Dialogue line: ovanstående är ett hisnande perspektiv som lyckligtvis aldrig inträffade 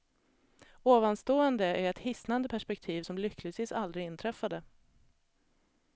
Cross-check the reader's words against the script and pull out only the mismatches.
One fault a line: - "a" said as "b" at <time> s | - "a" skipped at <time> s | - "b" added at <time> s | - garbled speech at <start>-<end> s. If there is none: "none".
none